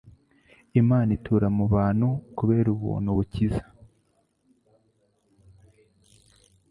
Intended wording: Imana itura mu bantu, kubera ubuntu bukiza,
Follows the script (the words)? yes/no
yes